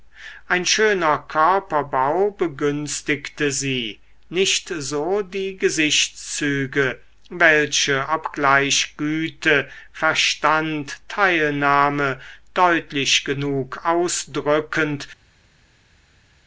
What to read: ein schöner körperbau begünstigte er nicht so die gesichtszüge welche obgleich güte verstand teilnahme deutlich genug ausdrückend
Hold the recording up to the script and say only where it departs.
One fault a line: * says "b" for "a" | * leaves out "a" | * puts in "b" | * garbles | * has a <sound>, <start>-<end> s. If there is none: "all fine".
* says "sie" for "er"